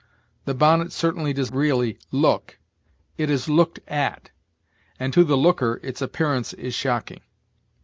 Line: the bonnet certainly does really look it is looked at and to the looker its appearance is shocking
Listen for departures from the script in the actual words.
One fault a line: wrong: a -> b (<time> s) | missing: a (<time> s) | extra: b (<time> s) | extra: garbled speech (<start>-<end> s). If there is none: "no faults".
no faults